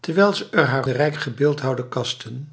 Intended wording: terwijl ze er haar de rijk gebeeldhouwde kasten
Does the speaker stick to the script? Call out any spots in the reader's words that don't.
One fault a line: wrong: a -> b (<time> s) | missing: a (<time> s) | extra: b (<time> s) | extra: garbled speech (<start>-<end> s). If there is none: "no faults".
no faults